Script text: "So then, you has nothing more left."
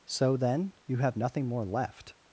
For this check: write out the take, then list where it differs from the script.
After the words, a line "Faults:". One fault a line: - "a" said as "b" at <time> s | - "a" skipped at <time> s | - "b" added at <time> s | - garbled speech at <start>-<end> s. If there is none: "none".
"So then, you have nothing more left."
Faults:
- "has" said as "have" at 1.0 s